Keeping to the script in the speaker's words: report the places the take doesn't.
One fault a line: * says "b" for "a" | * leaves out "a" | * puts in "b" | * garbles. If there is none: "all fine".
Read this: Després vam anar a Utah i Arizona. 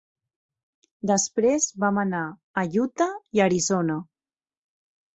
all fine